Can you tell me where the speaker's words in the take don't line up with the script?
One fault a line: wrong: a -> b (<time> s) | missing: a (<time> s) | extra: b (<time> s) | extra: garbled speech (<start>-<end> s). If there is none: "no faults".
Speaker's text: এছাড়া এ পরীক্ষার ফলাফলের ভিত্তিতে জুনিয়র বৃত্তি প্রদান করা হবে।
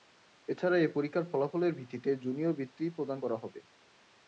no faults